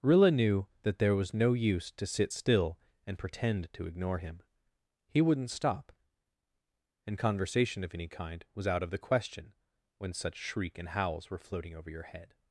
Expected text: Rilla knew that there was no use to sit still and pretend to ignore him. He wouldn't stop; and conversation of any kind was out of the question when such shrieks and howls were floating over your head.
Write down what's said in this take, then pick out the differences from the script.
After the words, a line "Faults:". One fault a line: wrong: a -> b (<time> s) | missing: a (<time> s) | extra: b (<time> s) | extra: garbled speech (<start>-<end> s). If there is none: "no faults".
Rilla knew that there was no use to sit still and pretend to ignore him. He wouldn't stop; and conversation of any kind was out of the question when such shriek and howls were floating over your head.
Faults:
wrong: shrieks -> shriek (10.3 s)